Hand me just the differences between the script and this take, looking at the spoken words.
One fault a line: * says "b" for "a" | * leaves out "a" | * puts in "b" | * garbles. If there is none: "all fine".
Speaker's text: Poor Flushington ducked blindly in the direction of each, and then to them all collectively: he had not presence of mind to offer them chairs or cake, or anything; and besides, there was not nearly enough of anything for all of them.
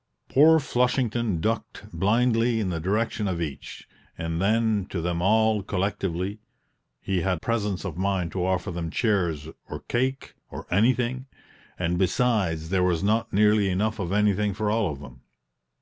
* leaves out "not"